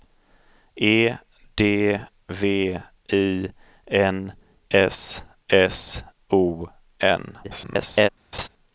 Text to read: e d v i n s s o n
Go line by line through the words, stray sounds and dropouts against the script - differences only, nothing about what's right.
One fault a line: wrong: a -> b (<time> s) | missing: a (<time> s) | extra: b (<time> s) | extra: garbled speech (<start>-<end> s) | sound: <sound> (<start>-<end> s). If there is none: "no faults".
extra: garbled speech (7.4-8.1 s)
sound: laugh (8.3-8.5 s)